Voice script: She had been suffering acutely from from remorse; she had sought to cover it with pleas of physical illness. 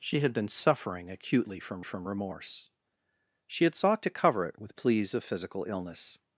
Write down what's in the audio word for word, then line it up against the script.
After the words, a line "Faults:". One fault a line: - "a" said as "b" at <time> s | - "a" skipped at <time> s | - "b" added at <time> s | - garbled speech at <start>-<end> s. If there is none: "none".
She had been suffering acutely from from remorse; she had sought to cover it with pleas of physical illness.
Faults:
none